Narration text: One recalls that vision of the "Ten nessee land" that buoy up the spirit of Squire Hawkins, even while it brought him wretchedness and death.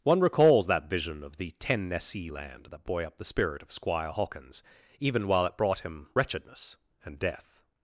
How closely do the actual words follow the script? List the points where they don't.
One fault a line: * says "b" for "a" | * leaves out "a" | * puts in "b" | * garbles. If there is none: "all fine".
all fine